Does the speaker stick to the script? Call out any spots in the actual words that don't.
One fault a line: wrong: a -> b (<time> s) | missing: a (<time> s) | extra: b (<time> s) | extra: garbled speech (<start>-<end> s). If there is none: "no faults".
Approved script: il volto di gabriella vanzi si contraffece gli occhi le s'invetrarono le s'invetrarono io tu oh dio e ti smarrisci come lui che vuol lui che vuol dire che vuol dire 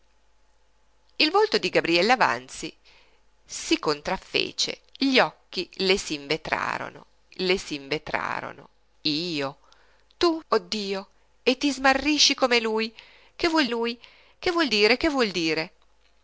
no faults